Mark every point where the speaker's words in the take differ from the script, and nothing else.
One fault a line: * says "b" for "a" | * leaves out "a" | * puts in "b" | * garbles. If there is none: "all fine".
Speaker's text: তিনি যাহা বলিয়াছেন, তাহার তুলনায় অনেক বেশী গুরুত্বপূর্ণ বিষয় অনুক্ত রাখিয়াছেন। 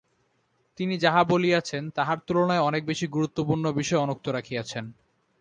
all fine